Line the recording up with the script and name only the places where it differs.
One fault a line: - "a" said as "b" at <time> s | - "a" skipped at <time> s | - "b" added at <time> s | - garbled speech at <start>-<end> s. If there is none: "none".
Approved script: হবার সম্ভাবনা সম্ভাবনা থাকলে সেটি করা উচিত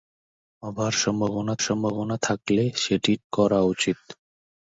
none